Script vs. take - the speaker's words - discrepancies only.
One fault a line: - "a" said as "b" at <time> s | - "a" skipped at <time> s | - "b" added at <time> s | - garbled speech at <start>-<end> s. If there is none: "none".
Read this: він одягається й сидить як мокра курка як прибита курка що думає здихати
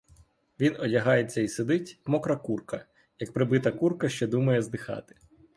- "як" skipped at 2.0 s